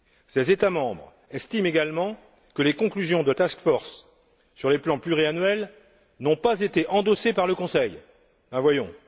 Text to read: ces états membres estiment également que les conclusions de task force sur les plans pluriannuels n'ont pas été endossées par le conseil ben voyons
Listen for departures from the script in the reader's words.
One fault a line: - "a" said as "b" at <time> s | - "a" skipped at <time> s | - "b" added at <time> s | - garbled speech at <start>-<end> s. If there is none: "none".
none